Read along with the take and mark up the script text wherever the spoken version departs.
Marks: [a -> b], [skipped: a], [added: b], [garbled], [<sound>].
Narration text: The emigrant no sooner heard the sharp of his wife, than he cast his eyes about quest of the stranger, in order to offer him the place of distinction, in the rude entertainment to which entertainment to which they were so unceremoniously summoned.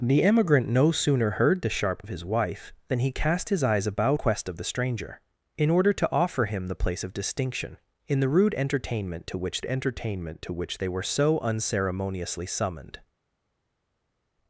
The emigrant no sooner heard the sharp of his wife, than he cast his eyes about quest of the stranger, in order to offer him the place of distinction, in the rude entertainment to which entertainment to which they were so unceremoniously summoned.